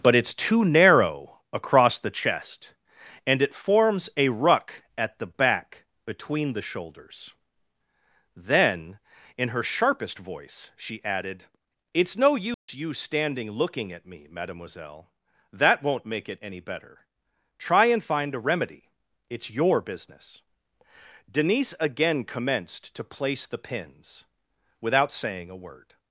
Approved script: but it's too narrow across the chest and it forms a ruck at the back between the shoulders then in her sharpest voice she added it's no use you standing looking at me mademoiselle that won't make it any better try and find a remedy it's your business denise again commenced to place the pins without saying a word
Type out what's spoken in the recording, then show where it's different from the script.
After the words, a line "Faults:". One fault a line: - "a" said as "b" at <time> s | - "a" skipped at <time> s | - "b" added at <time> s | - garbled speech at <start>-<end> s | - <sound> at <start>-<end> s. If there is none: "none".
but it's too narrow across the chest and it forms a ruck at the back between the shoulders then in her sharpest voice she added it's no use you standing looking at me mademoiselle that won't make it any better try and find a remedy it's your business denise again commenced to place the pins without saying a word
Faults:
- dropout at 12.5-12.7 s